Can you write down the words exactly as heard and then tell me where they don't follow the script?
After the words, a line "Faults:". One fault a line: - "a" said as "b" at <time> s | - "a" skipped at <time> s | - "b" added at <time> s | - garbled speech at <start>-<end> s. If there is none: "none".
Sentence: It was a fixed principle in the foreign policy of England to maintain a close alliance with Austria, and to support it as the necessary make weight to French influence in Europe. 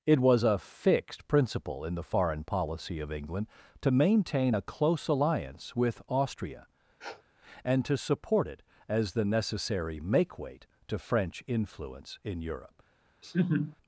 It was a fixed principle in the foreign policy of England to maintain a close alliance with Austria, and to support it as the necessary make weight to French influence in Europe.
Faults:
none